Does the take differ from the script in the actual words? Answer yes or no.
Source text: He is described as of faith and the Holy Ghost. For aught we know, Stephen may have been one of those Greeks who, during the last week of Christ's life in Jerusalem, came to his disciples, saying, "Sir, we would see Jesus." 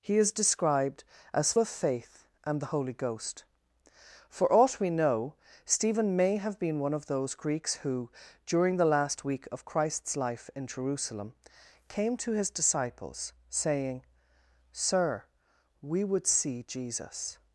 no